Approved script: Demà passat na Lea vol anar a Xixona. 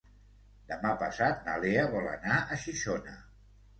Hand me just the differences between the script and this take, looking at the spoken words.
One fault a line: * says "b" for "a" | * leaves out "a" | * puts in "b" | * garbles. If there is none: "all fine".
all fine